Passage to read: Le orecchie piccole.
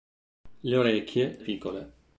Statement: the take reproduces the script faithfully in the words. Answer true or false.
true